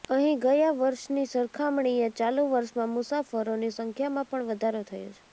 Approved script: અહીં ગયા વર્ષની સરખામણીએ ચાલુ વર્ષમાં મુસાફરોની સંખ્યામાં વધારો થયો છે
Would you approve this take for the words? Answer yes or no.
no